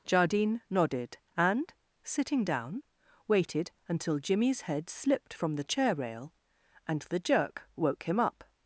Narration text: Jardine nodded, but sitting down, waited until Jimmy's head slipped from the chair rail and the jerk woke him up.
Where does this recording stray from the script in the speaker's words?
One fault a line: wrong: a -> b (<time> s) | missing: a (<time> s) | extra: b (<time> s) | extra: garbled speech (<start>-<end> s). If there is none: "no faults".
wrong: but -> and (1.4 s)